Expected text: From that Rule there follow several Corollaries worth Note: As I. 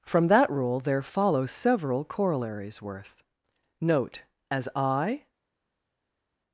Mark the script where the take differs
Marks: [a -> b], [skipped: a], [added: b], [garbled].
From that Rule there follow several Corollaries worth Note: As I.